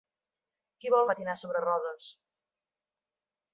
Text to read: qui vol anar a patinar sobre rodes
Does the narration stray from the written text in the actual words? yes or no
yes